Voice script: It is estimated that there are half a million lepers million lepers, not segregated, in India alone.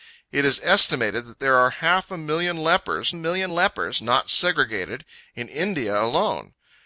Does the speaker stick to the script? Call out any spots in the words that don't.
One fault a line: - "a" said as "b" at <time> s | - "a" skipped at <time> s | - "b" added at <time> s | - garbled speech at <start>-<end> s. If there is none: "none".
none